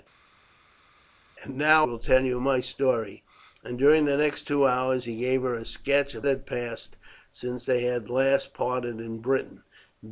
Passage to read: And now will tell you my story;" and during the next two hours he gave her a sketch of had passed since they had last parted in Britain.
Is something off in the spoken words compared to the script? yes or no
no